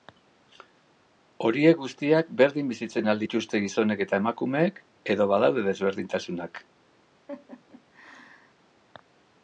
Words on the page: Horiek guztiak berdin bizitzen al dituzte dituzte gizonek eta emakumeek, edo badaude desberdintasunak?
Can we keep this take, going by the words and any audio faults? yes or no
no